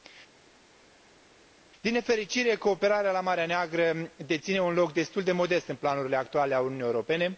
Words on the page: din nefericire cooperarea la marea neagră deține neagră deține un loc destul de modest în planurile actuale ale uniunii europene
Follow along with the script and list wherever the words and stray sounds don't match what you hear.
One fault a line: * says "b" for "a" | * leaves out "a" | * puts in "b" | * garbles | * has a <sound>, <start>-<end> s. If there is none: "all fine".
* leaves out "neagră deține"